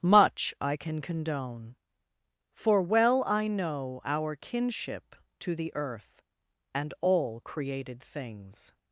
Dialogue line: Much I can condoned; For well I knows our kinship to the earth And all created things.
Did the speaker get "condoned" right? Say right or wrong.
wrong